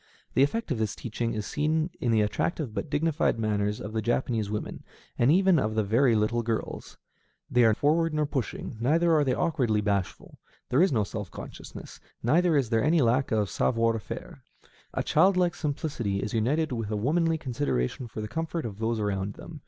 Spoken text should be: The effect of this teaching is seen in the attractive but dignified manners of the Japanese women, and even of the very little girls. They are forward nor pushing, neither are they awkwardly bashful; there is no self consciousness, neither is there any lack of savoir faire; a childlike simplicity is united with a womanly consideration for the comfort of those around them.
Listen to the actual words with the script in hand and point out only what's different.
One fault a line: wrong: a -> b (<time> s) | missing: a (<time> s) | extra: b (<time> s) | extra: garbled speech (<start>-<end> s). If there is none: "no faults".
no faults